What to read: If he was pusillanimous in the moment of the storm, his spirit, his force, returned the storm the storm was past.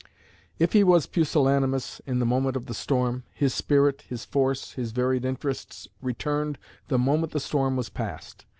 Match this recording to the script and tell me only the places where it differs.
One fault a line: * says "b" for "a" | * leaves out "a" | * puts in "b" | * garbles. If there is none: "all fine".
* puts in "his varied interests"
* says "moment" for "storm"